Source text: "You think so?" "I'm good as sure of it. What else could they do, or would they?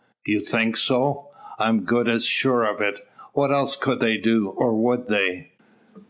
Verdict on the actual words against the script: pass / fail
pass